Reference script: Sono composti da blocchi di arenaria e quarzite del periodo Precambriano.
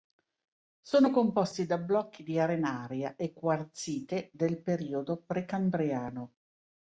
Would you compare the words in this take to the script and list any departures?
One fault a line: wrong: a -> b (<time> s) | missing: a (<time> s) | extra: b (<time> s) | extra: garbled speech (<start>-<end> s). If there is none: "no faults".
no faults